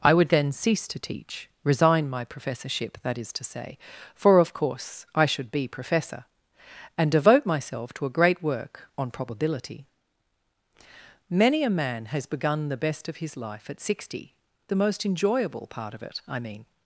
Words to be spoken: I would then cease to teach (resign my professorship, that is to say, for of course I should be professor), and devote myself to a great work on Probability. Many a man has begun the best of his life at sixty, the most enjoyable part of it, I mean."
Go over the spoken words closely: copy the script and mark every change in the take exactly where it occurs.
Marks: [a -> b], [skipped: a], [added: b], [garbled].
I would then cease to teach (resign my professorship, that is to say, for of course I should be professor), and devote myself to a great work on Probability. Many a man has begun the best of his life at sixty, the most enjoyable part of it, I mean."